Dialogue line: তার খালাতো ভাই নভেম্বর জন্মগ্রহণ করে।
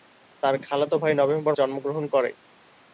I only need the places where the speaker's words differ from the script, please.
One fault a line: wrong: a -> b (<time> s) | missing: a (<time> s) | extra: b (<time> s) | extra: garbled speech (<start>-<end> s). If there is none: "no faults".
no faults